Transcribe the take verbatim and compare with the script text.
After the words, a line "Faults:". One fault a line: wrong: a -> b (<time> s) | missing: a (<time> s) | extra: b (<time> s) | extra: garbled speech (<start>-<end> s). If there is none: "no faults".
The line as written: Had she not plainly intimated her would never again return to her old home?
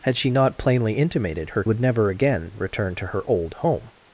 Had she not plainly intimated her would never again return to her old home?
Faults:
no faults